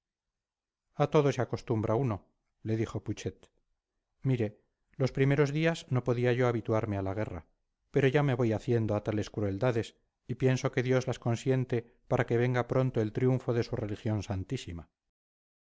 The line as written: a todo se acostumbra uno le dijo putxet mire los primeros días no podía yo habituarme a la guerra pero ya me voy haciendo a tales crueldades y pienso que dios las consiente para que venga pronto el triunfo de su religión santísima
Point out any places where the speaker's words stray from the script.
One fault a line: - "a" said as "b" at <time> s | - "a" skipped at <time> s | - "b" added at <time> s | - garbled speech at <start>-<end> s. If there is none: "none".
none